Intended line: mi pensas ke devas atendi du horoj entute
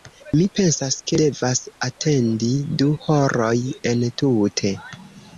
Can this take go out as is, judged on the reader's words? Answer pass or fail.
pass